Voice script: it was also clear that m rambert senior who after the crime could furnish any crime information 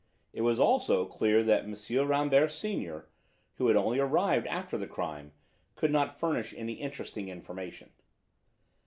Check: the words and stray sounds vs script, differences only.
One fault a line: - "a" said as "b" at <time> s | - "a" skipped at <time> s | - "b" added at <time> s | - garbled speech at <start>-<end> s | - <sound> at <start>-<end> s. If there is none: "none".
- "had only arrived" added at 3.7 s
- "not" added at 5.9 s
- "crime" said as "interesting" at 6.7 s